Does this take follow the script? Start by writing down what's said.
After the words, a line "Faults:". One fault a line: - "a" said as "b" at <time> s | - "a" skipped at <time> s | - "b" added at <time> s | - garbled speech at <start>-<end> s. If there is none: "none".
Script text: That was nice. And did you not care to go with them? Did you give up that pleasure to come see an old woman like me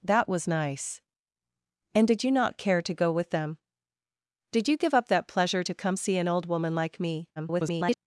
That was nice. And did you not care to go with them? Did you give up that pleasure to come see an old woman like me [garbled]
Faults:
- garbled speech at 7.4-8.0 s